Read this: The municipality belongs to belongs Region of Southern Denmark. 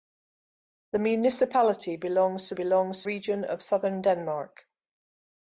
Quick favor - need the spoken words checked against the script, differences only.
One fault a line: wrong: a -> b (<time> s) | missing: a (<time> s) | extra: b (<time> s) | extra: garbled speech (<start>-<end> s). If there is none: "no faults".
no faults